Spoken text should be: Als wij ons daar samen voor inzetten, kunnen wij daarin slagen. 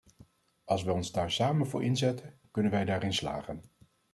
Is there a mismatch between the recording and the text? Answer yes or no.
no